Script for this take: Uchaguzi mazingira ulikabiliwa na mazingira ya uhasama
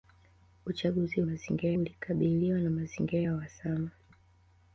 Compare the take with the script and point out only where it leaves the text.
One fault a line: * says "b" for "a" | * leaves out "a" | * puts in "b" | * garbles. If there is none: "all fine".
all fine